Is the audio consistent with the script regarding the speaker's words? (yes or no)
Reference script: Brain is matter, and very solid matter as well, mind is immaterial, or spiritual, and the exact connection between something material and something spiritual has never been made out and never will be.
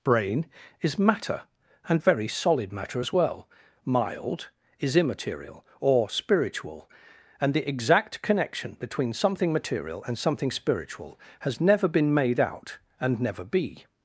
no